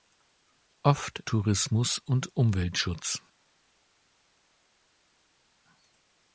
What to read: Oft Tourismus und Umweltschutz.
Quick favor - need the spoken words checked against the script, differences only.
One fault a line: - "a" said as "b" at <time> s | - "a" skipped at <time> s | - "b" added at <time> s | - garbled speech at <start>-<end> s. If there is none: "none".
none